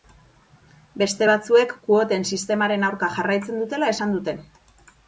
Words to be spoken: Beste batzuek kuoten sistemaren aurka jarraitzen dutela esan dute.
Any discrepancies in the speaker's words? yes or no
no